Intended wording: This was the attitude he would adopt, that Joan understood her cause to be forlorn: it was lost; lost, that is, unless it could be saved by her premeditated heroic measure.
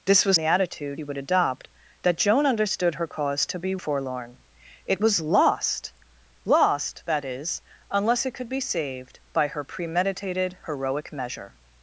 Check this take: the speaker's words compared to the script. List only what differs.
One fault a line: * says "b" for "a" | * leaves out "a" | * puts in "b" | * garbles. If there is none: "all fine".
all fine